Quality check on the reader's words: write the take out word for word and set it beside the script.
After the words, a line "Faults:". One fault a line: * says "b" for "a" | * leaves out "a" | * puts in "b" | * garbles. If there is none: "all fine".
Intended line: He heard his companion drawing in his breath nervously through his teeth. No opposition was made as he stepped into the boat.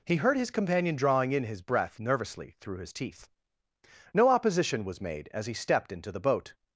He heard his companion drawing in his breath nervously through his teeth. No opposition was made as he stepped into the boat.
Faults:
all fine